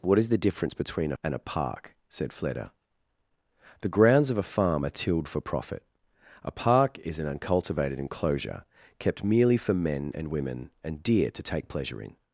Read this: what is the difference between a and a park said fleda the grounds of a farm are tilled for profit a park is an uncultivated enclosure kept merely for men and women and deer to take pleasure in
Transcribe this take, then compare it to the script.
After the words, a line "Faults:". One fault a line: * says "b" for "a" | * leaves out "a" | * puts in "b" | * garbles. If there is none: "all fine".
what is the difference between a and a park said fleda the grounds of a farm are tilled for profit a park is an uncultivated enclosure kept merely for men and women and deer to take pleasure in
Faults:
all fine